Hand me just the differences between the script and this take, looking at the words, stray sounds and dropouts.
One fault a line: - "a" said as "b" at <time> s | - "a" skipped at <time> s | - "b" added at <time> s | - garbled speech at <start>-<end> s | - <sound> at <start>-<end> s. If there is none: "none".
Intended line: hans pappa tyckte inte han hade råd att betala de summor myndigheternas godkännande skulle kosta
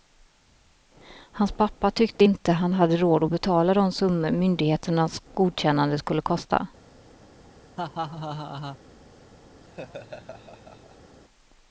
- laugh at 7.8-8.8 s
- laugh at 9.6-11.2 s